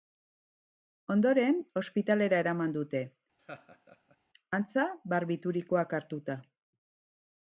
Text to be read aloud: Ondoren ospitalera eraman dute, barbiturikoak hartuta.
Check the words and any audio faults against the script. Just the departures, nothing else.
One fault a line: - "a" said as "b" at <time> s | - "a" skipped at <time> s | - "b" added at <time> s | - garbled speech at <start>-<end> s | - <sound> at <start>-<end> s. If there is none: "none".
- laugh at 3.4-4.2 s
- "antza" added at 4.6 s